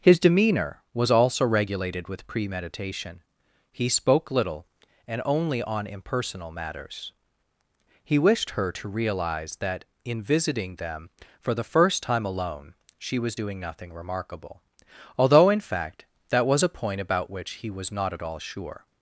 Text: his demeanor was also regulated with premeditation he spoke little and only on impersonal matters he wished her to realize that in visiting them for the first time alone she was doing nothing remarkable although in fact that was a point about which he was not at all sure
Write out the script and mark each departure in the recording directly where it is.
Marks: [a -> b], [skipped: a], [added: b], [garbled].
his demeanor was also regulated with premeditation he spoke little and only on impersonal matters he wished her to realize that in visiting them for the first time alone she was doing nothing remarkable although in fact that was a point about which he was not at all sure